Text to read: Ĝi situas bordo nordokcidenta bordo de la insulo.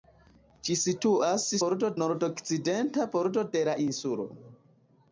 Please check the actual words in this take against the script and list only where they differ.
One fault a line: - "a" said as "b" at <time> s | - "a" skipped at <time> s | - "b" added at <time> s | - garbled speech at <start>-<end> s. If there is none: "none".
none